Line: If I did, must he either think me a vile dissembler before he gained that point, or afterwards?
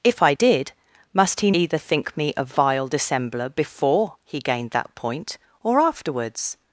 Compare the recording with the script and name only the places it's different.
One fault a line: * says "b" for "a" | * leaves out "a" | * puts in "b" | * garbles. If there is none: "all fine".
all fine